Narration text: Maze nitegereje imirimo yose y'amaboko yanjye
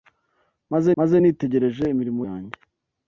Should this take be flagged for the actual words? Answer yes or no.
yes